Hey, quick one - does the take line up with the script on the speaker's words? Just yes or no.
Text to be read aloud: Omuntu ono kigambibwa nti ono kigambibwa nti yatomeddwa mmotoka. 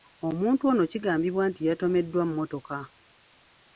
no